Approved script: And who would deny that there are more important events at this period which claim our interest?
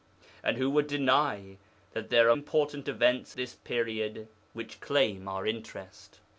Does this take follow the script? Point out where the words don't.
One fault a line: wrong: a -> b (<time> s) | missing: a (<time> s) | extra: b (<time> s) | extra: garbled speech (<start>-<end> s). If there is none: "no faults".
missing: more (2.4 s)
missing: at (3.4 s)